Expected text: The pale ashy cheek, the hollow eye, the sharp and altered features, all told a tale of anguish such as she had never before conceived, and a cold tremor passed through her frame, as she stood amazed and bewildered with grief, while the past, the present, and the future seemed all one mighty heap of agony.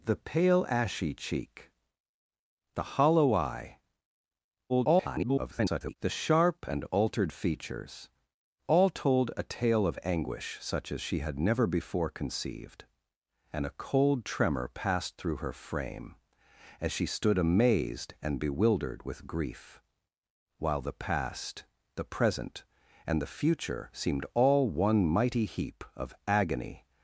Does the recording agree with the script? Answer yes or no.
no